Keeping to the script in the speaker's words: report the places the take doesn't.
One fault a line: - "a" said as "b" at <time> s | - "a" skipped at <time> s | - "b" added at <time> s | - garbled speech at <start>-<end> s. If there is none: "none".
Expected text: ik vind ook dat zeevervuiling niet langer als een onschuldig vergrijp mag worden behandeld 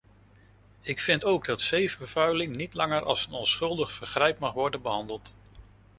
none